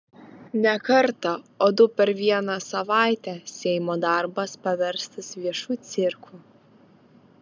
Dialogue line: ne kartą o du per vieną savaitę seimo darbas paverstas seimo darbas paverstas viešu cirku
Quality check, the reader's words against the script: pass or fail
fail